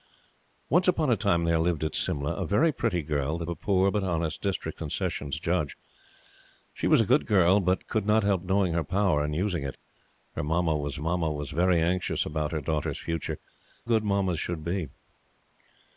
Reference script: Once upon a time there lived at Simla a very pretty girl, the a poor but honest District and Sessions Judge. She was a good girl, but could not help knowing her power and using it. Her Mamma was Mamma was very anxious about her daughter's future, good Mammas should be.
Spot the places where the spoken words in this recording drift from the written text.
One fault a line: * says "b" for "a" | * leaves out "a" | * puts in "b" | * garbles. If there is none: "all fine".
all fine